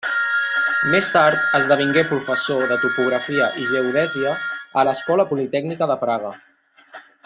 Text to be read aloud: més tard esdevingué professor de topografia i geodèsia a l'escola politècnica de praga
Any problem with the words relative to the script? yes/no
no